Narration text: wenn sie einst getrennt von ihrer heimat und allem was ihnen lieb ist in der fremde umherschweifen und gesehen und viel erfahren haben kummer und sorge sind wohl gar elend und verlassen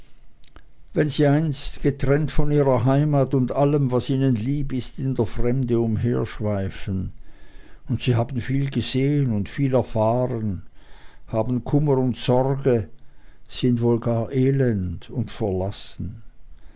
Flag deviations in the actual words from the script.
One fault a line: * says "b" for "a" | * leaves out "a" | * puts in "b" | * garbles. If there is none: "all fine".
* puts in "sie haben viel"